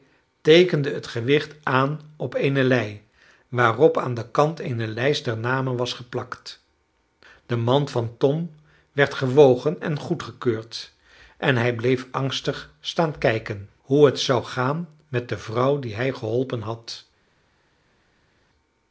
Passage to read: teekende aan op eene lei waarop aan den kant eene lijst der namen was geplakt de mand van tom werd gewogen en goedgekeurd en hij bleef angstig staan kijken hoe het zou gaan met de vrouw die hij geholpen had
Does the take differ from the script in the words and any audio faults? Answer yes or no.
yes